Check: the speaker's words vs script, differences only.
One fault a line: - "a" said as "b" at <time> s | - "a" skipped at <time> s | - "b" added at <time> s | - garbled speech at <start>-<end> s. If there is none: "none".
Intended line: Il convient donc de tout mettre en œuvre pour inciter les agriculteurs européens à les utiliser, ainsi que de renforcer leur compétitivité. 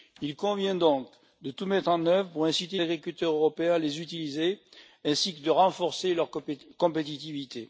- "les" skipped at 2.8 s